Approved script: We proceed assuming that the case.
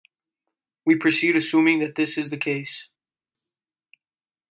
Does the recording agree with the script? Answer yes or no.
no